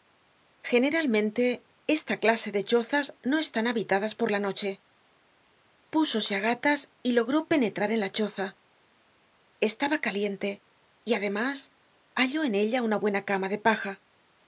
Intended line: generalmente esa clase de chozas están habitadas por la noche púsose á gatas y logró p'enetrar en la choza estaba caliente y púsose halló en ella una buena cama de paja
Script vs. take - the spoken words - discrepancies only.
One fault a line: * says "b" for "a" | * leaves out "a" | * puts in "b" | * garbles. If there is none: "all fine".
* says "esta" for "esa"
* puts in "no"
* says "además" for "púsose"